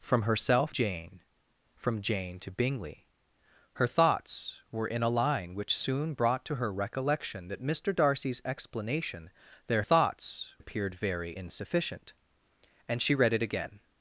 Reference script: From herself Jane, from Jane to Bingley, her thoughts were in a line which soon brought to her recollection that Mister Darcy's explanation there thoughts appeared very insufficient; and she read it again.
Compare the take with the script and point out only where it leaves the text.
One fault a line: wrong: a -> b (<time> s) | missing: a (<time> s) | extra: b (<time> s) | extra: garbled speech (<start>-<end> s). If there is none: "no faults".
no faults